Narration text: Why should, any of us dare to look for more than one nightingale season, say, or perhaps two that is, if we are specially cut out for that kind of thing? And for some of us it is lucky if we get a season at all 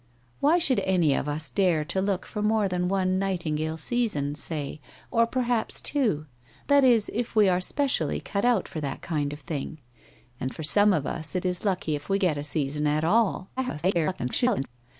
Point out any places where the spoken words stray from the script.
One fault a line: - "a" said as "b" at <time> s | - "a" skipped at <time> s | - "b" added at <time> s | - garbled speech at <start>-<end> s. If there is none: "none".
- garbled speech at 13.6-14.7 s